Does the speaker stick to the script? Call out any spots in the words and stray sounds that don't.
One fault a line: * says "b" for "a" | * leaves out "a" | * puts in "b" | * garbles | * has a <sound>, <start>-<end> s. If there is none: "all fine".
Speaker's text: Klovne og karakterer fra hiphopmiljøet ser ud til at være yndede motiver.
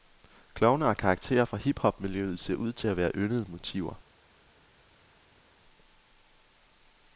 all fine